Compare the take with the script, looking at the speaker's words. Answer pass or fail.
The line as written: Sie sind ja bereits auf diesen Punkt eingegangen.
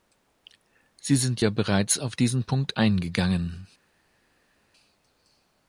pass